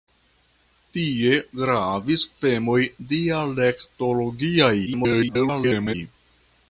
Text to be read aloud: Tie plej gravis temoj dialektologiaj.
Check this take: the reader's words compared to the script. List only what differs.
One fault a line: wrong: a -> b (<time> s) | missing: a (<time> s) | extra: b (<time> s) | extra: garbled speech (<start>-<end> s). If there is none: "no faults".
missing: plej (1.3 s)
extra: garbled speech (4.9-5.9 s)